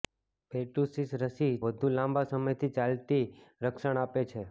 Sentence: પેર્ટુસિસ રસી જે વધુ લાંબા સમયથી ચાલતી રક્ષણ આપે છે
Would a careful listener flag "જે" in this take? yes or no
yes